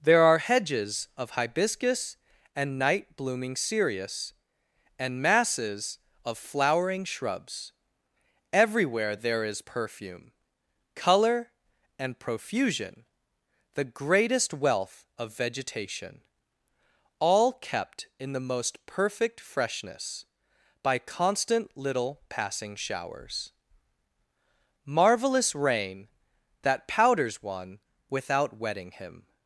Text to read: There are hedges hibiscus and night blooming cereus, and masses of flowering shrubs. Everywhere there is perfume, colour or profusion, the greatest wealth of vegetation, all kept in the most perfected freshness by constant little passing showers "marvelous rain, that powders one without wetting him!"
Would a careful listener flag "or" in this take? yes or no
yes